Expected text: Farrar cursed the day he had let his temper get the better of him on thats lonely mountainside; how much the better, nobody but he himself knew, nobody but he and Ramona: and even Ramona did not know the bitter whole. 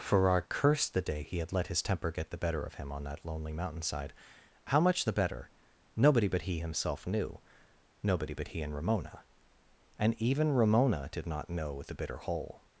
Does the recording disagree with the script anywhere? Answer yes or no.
yes